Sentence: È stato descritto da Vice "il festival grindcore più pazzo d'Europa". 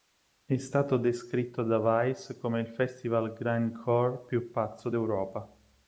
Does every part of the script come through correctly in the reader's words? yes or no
no